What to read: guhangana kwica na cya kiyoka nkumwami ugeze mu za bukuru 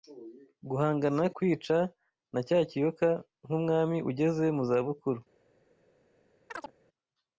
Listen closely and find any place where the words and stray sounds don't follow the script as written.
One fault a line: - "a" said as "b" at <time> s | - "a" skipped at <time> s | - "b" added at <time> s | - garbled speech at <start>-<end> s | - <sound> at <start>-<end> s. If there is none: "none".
- chirp at 6.5-6.7 s